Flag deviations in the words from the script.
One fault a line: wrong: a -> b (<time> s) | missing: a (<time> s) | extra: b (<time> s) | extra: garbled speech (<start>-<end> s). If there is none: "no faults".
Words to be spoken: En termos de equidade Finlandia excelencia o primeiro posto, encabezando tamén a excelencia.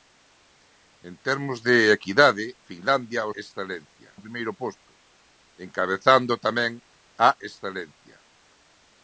no faults